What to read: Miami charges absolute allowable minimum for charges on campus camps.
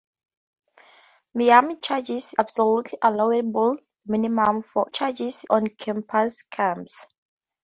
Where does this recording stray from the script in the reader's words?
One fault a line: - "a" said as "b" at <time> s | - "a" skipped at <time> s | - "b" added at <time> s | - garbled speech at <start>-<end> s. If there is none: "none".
none